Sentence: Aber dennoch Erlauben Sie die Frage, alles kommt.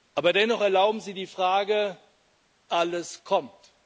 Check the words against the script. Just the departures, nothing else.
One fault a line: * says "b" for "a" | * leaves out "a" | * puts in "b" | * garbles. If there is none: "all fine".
all fine